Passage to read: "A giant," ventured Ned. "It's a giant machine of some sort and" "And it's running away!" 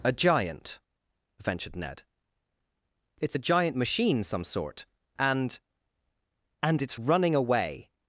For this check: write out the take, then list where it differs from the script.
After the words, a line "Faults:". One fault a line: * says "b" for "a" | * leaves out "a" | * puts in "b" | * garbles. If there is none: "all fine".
"A giant," ventured Ned. "It's a giant machine some sort and" "And it's running away!"
Faults:
* leaves out "of"